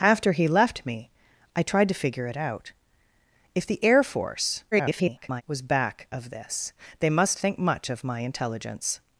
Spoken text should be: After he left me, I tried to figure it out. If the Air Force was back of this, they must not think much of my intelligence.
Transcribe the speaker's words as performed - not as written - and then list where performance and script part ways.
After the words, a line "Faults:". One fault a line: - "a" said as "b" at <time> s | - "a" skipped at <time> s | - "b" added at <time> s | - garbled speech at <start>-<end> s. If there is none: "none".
After he left me, I tried to figure it out. If the Air Force [garbled] was back of this, they must think much of my intelligence.
Faults:
- garbled speech at 4.7-5.4 s
- "not" skipped at 7.4 s